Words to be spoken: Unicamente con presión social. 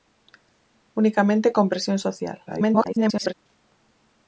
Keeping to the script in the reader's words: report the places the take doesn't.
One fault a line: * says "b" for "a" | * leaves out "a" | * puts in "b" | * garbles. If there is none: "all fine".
* garbles